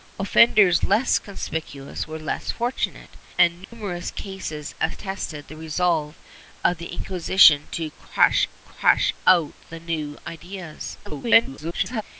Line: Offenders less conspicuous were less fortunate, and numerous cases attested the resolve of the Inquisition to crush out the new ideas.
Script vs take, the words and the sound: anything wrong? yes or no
yes